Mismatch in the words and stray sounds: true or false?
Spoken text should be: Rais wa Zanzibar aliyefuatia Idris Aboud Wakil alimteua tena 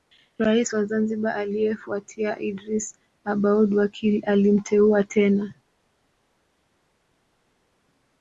false